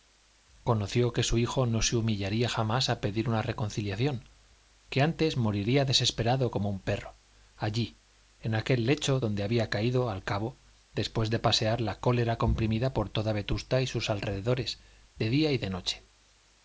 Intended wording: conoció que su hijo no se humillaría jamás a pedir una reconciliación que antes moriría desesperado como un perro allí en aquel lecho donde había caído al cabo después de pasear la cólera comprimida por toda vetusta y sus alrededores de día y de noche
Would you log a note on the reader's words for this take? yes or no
no